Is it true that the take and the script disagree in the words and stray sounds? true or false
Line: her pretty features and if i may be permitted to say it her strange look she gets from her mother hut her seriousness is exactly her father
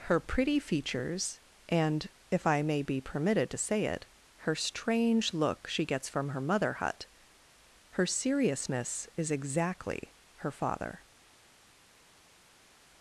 false